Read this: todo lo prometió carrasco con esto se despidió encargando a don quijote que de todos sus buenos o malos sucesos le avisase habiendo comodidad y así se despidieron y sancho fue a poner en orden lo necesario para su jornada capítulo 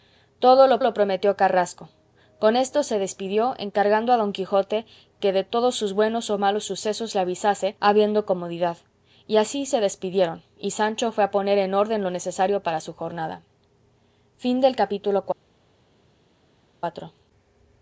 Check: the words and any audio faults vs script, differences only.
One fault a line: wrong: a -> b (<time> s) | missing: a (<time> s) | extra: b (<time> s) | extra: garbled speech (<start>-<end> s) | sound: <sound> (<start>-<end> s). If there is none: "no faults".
extra: lo (0.8 s)